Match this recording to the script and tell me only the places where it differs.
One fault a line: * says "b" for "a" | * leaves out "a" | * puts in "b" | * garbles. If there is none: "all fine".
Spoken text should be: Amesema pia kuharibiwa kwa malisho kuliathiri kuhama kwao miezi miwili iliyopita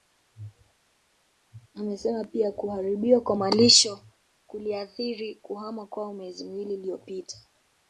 all fine